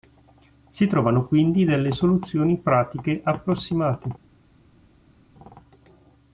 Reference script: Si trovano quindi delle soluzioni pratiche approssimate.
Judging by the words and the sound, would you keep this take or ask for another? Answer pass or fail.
pass